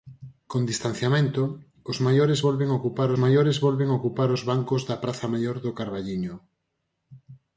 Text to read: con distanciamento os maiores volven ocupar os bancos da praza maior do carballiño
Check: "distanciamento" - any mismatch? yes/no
no